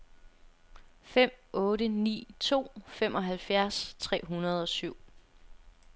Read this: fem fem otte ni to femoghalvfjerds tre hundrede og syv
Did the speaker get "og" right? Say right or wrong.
right